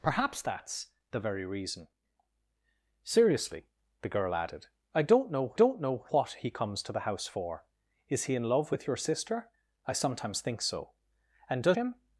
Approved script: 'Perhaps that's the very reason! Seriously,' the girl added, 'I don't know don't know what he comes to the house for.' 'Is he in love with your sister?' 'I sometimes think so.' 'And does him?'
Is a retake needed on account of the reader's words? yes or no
no